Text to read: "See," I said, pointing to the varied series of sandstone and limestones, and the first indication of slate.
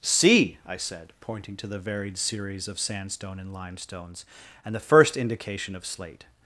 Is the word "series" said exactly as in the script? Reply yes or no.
yes